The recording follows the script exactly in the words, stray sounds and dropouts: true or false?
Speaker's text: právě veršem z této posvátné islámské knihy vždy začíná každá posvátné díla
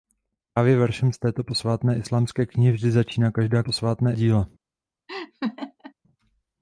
false